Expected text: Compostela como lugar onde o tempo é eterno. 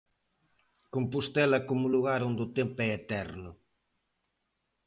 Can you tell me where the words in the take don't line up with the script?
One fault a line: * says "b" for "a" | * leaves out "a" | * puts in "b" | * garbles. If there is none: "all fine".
all fine